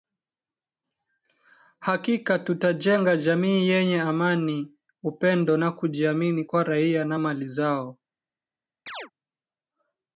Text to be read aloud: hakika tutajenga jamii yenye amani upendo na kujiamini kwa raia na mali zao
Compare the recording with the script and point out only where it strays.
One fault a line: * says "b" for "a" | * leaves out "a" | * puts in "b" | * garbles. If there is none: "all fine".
all fine